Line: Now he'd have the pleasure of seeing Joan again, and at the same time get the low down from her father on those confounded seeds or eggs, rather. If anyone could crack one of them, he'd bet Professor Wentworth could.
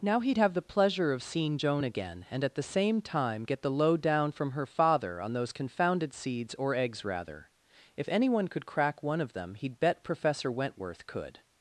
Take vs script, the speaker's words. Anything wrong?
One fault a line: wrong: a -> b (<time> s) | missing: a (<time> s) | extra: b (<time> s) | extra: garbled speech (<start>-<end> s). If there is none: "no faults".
no faults